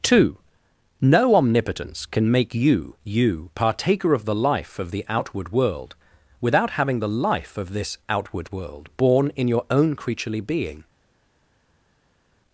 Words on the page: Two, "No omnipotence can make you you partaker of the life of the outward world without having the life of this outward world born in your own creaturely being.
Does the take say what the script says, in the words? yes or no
yes